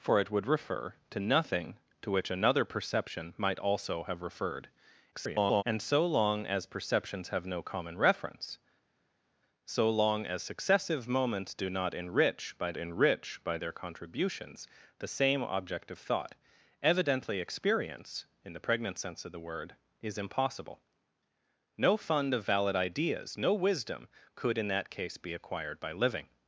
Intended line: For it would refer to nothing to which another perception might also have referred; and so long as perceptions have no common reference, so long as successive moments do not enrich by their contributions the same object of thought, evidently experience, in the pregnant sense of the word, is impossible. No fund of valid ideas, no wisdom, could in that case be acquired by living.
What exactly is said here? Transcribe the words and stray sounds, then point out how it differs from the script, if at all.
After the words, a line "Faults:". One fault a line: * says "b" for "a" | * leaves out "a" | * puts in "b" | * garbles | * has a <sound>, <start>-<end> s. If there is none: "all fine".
For it would refer to nothing to which another perception might also have referred; [garbled] and so long as perceptions have no common reference, so long as successive moments do not enrich by enrich by their contributions the same object of thought, evidently experience, in the pregnant sense of the word, is impossible. No fund of valid ideas, no wisdom, could in that case be acquired by living.
Faults:
* garbles
* puts in "enrich by"